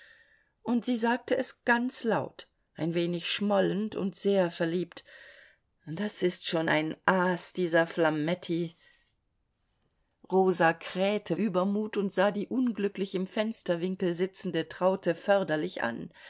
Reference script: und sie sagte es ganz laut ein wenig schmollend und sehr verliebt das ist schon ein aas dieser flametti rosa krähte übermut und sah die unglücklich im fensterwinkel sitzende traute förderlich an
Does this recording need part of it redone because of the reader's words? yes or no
no